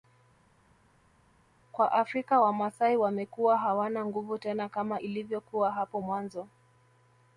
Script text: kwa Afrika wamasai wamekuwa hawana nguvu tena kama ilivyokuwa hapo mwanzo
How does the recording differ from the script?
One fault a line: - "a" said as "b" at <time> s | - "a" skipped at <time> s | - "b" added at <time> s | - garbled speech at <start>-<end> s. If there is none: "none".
none